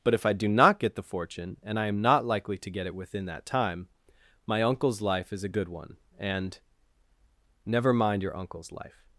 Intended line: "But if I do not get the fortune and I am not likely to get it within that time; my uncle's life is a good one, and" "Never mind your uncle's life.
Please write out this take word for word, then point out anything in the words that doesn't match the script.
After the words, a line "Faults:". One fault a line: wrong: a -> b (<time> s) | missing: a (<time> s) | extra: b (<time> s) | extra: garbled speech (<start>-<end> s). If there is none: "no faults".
"But if I do not get the fortune and I am not likely to get it within that time; my uncle's life is a good one, and" "Never mind your uncle's life.
Faults:
no faults